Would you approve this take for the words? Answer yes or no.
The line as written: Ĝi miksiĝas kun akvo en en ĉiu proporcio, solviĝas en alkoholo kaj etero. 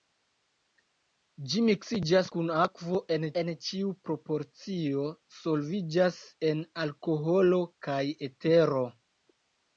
yes